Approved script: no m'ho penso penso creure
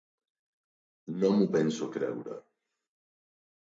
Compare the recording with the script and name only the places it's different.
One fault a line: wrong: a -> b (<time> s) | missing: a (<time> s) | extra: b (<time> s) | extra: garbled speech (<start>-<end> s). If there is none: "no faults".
missing: penso (1.9 s)